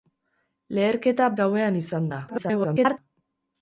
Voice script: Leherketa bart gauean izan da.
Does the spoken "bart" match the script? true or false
false